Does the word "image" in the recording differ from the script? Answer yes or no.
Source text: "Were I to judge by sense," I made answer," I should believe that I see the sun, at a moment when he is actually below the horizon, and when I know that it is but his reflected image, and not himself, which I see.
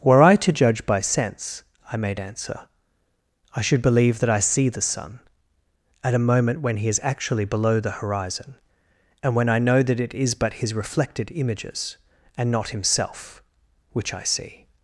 yes